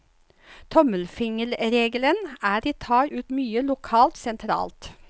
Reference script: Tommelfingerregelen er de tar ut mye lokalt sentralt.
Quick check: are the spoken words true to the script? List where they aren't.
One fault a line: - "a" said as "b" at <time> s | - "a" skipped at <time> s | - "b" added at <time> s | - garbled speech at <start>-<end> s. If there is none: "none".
none